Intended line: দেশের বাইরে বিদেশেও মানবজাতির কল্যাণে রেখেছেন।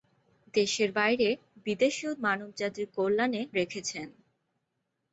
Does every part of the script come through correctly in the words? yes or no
yes